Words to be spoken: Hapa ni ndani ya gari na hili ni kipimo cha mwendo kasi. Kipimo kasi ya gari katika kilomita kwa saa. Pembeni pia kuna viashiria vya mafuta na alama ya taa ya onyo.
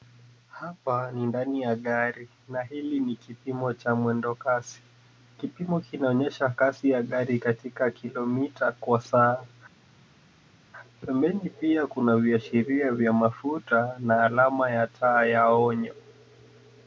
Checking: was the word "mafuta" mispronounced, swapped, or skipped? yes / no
no